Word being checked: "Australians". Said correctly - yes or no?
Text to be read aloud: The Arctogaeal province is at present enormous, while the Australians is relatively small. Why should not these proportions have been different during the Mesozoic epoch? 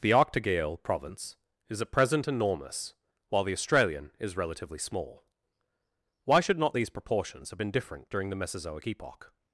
no